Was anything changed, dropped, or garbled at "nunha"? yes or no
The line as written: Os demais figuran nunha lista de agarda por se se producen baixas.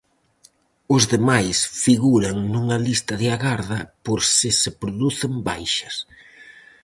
no